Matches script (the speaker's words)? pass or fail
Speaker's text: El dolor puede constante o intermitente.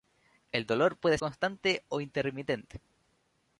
pass